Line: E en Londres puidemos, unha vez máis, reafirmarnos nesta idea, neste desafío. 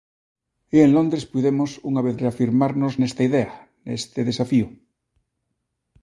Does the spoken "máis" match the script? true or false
false